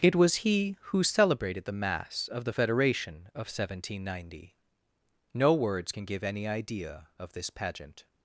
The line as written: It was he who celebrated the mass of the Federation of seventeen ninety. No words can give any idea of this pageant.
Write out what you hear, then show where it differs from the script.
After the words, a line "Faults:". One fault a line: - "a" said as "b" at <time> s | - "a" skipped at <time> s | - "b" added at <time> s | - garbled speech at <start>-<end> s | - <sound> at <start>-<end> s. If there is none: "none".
It was he who celebrated the mass of the Federation of seventeen ninety. No words can give any idea of this pageant.
Faults:
none